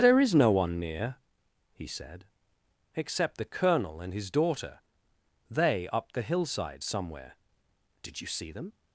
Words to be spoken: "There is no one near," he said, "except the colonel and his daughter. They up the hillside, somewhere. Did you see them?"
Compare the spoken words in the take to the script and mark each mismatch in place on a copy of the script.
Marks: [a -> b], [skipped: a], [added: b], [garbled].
"There is no one near," he said, "except the colonel and his daughter. They up the hillside, somewhere. Did you see them?"